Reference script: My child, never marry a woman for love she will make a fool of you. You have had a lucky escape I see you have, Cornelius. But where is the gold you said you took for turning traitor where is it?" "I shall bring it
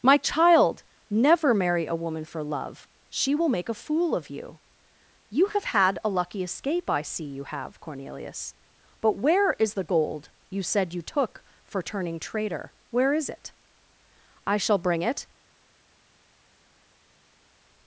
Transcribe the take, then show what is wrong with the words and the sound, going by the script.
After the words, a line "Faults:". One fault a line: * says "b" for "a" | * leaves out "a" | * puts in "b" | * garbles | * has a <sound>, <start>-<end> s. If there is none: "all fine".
My child, never marry a woman for love she will make a fool of you. You have had a lucky escape I see you have, Cornelius. But where is the gold you said you took for turning traitor where is it?" "I shall bring it
Faults:
all fine